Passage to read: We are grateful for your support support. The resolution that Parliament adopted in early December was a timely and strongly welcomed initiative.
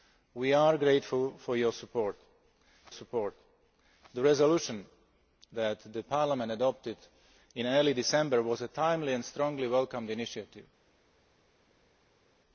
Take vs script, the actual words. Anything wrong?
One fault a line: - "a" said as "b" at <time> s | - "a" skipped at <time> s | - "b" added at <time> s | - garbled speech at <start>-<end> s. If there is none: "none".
none